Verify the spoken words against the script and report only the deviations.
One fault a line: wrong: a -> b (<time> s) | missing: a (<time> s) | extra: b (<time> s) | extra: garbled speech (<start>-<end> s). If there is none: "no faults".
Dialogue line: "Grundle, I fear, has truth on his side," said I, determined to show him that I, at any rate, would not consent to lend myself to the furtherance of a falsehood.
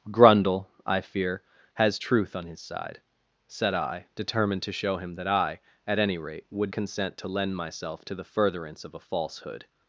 missing: not (6.7 s)